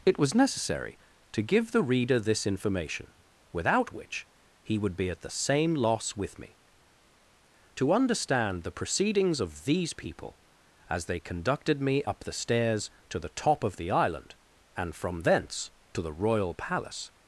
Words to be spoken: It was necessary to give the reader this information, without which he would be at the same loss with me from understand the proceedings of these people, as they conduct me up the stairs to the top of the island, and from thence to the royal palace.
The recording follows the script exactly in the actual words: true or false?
false